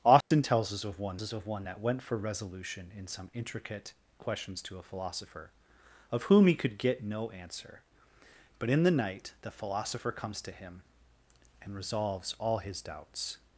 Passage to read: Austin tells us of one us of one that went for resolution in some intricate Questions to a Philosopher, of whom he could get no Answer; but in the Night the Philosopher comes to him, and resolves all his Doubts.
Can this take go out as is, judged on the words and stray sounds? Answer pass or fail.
fail